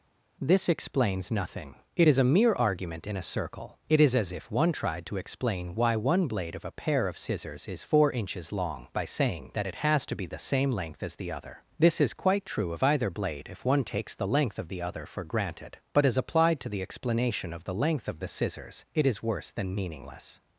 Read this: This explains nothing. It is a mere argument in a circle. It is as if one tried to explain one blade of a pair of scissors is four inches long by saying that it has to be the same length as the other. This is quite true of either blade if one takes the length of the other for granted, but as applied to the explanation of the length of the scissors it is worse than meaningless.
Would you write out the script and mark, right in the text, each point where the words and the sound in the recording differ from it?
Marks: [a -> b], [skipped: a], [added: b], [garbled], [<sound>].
This explains nothing. It is a mere argument in a circle. It is as if one tried to explain [added: why] one blade of a pair of scissors is four inches long by saying that it has to be the same length as the other. This is quite true of either blade if one takes the length of the other for granted, but as applied to the explanation of the length of the scissors it is worse than meaningless.